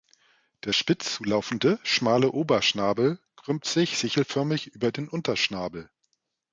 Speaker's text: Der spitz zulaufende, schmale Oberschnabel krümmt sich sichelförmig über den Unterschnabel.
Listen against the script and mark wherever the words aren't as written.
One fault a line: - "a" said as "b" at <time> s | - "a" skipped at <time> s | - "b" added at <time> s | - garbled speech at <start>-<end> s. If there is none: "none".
none